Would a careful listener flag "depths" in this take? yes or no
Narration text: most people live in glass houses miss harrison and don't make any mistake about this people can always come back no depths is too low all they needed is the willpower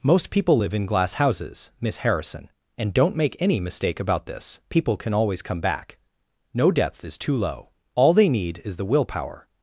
yes